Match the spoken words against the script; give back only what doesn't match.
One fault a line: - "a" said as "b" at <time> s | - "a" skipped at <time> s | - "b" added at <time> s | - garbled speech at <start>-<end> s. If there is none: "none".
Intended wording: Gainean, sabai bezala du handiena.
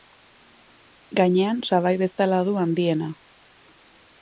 none